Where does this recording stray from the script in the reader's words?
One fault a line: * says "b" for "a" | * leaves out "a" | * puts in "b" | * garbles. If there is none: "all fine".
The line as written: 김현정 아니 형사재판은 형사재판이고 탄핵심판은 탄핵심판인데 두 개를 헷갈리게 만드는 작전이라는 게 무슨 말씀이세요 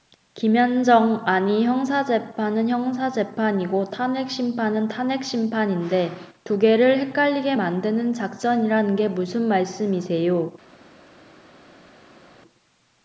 all fine